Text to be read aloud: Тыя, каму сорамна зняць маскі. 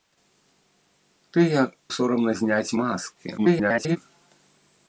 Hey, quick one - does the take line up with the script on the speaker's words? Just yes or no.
no